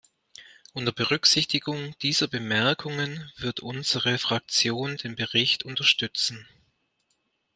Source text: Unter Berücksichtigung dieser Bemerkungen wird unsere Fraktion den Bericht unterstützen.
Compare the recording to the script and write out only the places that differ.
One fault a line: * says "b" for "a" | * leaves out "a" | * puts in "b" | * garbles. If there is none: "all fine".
all fine